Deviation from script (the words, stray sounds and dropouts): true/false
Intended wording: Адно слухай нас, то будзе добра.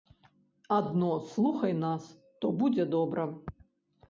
false